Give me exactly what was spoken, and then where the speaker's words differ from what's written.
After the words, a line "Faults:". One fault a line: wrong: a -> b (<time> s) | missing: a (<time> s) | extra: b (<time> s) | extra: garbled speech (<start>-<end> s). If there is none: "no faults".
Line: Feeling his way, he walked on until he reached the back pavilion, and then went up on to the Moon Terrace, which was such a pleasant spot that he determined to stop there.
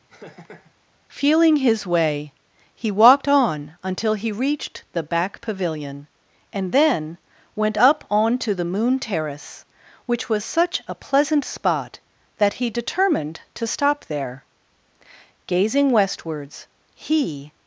Feeling his way, he walked on until he reached the back pavilion, and then went up on to the Moon Terrace, which was such a pleasant spot that he determined to stop there. Gazing westwards, he
Faults:
extra: Gazing westwards he (15.5 s)